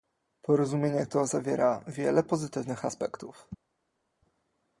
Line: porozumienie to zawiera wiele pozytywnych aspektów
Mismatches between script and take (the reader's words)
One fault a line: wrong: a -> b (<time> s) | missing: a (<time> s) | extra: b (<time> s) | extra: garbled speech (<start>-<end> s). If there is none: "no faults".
no faults